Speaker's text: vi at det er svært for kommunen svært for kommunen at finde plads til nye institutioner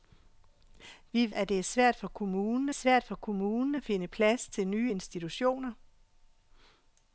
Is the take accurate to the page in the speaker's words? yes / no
yes